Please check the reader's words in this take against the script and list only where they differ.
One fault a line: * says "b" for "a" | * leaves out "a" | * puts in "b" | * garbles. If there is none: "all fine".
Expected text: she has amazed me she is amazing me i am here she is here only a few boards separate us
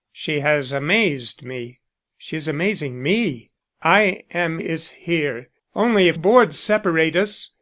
* leaves out "here she"
* leaves out "few"